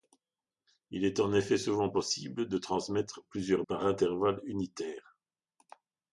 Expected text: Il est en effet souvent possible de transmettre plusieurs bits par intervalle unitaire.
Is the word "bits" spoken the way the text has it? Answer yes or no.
no